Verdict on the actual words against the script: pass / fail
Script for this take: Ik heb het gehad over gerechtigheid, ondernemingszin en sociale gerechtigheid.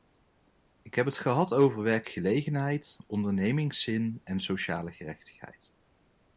fail